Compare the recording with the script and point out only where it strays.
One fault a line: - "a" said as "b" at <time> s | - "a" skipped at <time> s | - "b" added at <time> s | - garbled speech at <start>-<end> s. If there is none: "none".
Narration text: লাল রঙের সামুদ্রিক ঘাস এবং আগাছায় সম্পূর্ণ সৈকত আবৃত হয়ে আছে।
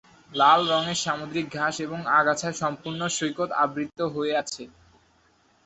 none